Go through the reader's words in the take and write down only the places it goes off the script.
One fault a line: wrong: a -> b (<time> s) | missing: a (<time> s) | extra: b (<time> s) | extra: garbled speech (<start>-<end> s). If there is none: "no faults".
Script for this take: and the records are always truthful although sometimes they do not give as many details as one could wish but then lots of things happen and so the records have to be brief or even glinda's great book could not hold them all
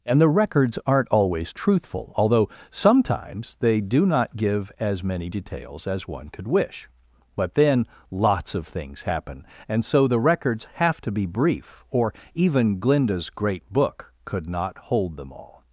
wrong: are -> aren't (0.8 s)